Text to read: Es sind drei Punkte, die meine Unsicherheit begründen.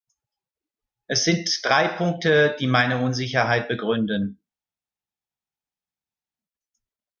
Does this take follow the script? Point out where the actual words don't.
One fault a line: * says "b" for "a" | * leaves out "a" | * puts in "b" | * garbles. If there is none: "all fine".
all fine